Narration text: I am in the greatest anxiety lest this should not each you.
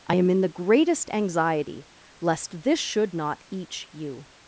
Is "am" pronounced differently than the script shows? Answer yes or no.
no